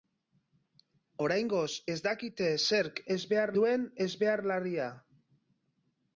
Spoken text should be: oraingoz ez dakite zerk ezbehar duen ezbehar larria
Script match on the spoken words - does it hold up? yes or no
yes